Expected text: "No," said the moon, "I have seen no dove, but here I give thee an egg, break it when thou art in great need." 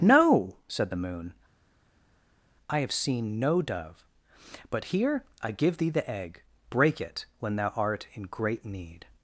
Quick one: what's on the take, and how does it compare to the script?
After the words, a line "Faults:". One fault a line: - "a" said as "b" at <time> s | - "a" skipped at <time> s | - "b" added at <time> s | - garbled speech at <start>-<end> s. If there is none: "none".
"No," said the moon, "I have seen no dove, but here I give thee the egg, break it when thou art in great need."
Faults:
- "an" said as "the" at 5.9 s